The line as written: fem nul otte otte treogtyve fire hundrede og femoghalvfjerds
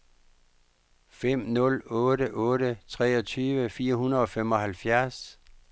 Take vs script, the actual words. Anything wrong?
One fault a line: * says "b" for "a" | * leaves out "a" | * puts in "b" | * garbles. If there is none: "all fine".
all fine